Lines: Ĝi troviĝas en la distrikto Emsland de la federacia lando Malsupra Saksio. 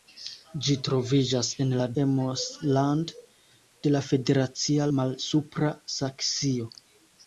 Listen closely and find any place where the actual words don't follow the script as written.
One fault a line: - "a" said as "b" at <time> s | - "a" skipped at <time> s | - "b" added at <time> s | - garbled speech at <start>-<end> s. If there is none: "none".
- "distrikto" skipped at 1.9 s
- "lando" skipped at 4.9 s